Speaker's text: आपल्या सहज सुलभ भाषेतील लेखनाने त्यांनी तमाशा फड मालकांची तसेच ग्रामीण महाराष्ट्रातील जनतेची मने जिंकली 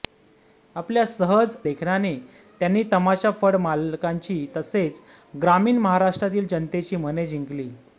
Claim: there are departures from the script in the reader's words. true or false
true